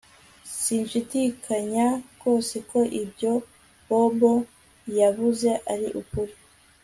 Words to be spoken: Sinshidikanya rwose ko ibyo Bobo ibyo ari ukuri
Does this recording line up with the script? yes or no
no